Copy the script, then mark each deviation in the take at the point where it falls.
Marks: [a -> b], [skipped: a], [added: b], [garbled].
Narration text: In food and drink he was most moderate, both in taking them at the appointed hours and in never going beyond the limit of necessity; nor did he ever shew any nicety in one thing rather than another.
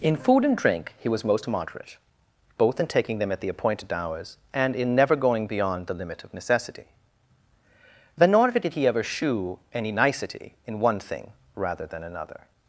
In food and drink he was most moderate, both in taking them at the appointed hours and in never going beyond the limit of necessity; [added: then] nor did he ever shew any nicety in one thing rather than another.